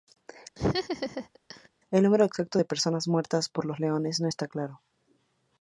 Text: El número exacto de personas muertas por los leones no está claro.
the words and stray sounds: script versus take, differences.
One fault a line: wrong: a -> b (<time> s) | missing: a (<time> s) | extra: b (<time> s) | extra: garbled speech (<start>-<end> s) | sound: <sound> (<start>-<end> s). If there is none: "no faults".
sound: laugh (0.6-1.7 s)